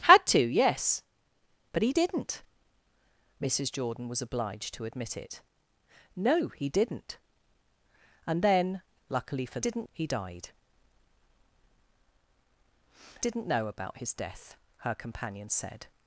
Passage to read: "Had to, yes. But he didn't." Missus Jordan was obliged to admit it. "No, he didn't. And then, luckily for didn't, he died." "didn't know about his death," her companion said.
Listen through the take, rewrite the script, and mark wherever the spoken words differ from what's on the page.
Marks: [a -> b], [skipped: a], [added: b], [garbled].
"Had to, yes. But he didn't." Missus Jordan was obliged to admit it. "No, he didn't. And then, luckily for didn't, he died." "didn't know about his death," her companion said.